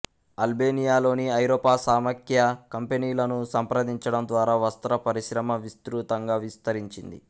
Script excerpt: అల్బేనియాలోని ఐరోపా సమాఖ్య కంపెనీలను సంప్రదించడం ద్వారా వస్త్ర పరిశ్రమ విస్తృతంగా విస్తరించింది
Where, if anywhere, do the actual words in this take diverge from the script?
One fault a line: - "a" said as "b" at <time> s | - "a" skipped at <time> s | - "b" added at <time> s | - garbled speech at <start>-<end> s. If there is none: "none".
none